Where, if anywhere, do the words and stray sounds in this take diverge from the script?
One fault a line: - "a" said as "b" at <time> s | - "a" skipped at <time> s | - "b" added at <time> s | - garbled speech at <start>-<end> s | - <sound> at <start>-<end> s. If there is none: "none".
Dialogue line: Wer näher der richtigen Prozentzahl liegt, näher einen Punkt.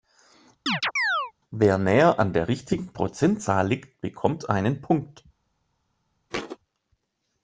- chirp at 0.7-1.3 s
- "an" added at 2.2 s
- "näher" said as "bekommt" at 4.0 s
- thud at 6.3-6.6 s